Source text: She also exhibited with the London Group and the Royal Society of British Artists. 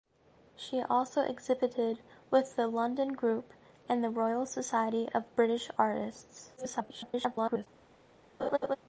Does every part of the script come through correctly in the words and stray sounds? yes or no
no